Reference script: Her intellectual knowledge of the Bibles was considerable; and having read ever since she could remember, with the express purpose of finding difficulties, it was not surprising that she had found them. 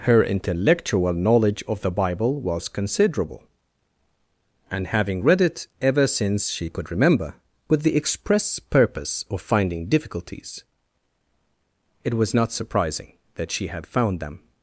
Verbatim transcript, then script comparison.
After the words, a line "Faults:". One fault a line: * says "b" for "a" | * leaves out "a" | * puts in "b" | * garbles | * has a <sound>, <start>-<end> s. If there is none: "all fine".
Her intellectual knowledge of the Bible was considerable; and having read it ever since she could remember, with the express purpose of finding difficulties, it was not surprising that she had found them.
Faults:
* says "Bible" for "Bibles"
* puts in "it"